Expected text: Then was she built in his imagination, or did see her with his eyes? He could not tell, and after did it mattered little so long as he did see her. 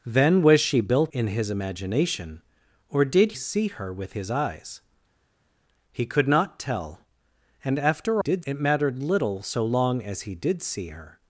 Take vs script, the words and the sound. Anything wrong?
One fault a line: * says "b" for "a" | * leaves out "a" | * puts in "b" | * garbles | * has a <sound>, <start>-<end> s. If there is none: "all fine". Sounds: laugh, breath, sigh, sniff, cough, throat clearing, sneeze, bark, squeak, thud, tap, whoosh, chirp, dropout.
all fine